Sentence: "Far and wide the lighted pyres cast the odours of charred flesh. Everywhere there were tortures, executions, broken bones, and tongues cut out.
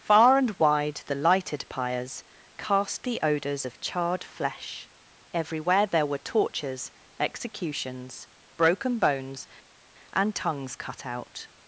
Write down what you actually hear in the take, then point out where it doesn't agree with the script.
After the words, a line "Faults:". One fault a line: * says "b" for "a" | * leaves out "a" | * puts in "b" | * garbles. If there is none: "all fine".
"Far and wide the lighted pyres cast the odours of charred flesh. Everywhere there were tortures, executions, broken bones, and tongues cut out.
Faults:
all fine